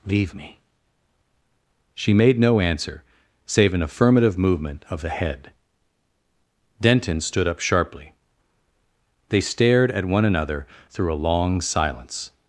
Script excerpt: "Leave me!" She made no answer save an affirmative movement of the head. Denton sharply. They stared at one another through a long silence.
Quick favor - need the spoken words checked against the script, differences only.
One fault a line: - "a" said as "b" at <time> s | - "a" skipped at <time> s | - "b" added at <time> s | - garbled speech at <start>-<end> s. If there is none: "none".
- "stood up" added at 7.2 s